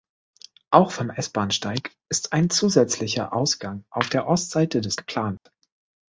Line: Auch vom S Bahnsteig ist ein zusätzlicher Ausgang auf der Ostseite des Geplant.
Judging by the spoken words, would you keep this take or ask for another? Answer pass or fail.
pass